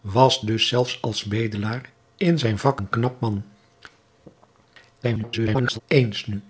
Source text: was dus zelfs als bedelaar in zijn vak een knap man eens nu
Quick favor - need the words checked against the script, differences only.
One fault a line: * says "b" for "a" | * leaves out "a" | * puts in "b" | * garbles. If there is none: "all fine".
* garbles